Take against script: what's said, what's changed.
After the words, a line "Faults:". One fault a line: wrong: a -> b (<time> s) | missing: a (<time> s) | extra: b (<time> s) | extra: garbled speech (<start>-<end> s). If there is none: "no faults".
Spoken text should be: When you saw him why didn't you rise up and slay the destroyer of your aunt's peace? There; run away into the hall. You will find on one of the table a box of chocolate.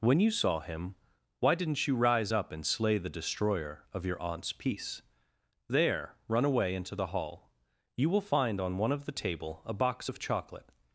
When you saw him why didn't you rise up and slay the destroyer of your aunt's peace? There; run away into the hall. You will find on one of the table a box of chocolate.
Faults:
no faults